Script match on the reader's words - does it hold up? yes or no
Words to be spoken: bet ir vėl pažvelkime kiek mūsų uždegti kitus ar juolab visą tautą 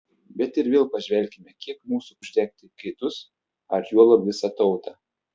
yes